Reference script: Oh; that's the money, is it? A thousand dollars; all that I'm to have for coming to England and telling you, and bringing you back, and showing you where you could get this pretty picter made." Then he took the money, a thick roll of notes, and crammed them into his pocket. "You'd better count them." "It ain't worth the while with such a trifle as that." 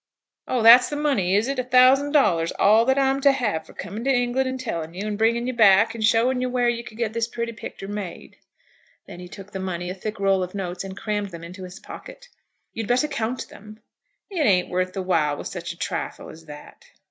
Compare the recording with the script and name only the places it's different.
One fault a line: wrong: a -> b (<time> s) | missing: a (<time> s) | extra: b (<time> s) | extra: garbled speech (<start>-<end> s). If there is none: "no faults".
no faults